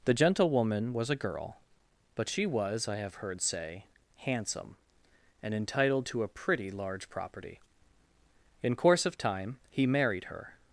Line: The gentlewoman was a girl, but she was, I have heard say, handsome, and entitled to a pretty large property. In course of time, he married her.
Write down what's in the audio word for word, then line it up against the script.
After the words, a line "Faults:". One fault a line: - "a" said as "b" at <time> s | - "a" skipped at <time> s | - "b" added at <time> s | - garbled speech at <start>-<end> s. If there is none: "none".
The gentlewoman was a girl, but she was, I have heard say, handsome, and entitled to a pretty large property. In course of time, he married her.
Faults:
none